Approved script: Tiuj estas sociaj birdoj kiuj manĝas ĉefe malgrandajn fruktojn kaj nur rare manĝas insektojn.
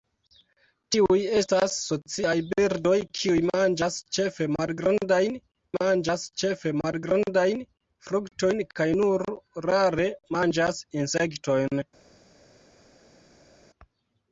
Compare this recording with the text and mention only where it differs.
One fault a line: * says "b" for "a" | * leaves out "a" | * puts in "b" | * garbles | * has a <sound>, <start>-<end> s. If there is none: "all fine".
* puts in "manĝas ĉefe malgrandajn"